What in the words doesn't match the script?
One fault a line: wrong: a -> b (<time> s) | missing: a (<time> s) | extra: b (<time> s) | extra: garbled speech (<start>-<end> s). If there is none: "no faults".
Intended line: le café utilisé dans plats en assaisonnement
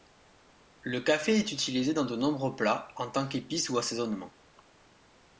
extra: est (1.4 s)
extra: de nombreux (2.1 s)
extra: tant qu'épice ou (3.1 s)